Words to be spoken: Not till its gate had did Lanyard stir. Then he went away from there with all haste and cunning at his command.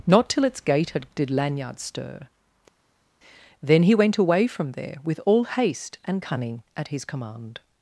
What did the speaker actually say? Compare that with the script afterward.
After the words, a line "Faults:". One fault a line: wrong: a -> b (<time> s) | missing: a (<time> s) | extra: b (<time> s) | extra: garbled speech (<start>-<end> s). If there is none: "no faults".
Not till its gate had did Lanyard stir. Then he went away from there with all haste and cunning at his command.
Faults:
no faults